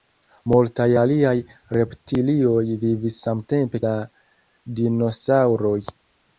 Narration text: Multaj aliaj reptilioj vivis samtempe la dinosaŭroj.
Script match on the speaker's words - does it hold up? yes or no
yes